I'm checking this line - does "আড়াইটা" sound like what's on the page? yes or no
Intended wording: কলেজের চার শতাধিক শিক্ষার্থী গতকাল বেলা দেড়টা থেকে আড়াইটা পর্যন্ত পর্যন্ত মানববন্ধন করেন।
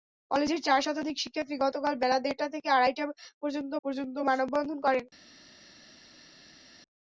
yes